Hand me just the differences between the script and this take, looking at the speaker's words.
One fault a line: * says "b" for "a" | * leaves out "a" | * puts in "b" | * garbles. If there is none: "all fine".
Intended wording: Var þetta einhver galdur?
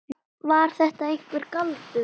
all fine